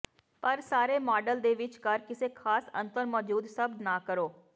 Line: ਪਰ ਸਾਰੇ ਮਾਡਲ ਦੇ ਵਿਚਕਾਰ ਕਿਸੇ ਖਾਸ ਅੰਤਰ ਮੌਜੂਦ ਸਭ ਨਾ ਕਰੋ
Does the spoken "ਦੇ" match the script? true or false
true